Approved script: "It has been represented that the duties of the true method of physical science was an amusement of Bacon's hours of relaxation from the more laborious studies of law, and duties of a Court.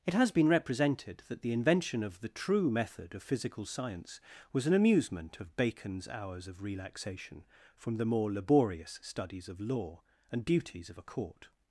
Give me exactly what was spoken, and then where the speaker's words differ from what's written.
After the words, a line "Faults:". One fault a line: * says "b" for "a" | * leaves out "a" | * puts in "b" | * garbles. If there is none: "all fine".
"It has been represented that the invention of the true method of physical science was an amusement of Bacon's hours of relaxation from the more laborious studies of law, and duties of a Court.
Faults:
* says "invention" for "duties"